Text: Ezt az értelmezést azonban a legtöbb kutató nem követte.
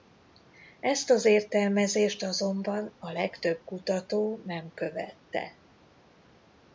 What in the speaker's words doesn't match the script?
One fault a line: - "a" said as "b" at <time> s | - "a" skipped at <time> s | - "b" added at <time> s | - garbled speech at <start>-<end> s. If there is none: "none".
none